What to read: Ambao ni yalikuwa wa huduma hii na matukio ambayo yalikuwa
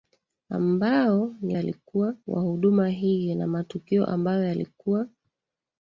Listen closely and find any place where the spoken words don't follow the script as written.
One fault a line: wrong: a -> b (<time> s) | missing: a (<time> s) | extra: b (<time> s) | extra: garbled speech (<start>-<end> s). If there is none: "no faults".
no faults